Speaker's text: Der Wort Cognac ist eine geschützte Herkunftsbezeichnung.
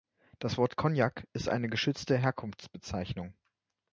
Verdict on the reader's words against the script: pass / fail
fail